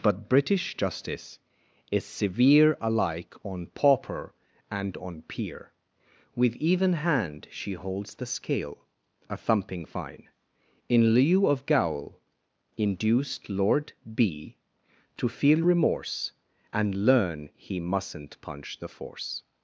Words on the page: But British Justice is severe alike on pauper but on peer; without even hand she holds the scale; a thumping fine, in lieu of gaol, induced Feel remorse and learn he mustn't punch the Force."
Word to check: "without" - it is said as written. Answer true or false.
false